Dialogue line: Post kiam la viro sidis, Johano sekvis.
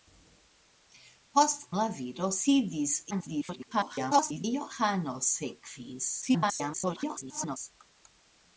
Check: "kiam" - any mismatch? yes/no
yes